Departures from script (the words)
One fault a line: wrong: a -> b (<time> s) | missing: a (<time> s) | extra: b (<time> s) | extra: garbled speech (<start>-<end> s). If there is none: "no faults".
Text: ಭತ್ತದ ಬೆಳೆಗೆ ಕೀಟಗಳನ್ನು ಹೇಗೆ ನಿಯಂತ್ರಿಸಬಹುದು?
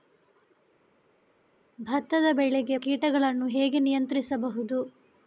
no faults